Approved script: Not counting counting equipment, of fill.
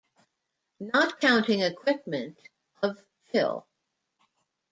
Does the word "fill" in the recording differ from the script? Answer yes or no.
no